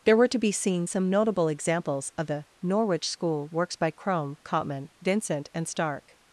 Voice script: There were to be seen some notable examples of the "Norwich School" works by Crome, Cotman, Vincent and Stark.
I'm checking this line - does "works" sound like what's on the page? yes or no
yes